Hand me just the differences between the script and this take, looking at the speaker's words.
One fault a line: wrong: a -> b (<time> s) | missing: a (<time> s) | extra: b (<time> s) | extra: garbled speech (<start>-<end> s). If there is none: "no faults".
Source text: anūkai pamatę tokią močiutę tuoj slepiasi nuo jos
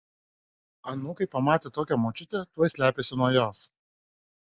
no faults